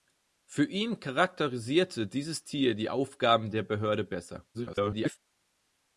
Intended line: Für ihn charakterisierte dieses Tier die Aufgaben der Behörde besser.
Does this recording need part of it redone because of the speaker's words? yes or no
yes